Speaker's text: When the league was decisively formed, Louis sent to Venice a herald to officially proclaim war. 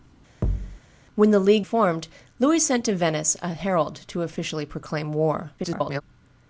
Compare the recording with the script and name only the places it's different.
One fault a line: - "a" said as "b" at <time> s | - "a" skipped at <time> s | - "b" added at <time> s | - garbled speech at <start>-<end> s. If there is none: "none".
- "was decisively" skipped at 1.7 s
- garbled speech at 5.6-6.0 s